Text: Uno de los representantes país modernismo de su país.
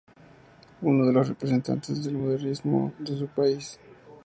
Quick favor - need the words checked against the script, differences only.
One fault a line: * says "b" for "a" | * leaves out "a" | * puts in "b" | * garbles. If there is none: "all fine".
* says "del" for "país"